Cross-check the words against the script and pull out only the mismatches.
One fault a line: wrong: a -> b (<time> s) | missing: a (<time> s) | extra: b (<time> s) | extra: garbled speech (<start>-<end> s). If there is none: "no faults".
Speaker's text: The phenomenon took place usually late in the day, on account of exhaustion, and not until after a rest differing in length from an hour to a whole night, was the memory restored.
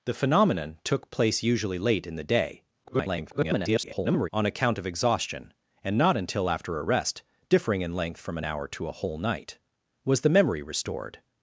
extra: garbled speech (2.8-4.3 s)